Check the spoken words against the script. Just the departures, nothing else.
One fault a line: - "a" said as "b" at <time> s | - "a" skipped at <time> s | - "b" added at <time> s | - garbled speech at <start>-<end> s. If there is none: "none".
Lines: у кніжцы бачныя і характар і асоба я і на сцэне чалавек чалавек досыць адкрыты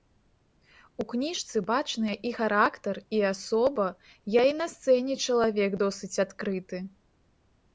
- "чалавек" skipped at 5.7 s